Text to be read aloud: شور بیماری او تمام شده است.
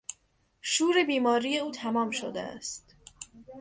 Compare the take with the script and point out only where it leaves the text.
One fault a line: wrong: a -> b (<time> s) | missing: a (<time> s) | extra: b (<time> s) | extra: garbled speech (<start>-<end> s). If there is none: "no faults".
no faults